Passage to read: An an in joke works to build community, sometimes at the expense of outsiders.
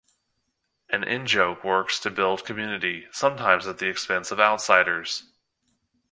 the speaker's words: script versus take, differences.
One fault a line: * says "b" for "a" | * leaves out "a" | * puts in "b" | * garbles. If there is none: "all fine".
* leaves out "an"